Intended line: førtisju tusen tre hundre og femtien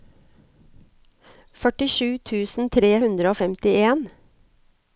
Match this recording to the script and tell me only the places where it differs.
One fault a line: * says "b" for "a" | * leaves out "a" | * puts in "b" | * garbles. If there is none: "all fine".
all fine